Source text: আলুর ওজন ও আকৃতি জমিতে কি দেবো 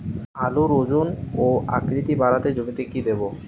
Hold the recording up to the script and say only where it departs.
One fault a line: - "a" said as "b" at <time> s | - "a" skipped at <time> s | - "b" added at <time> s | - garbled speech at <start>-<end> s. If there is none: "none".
- "বাড়াতে" added at 2.1 s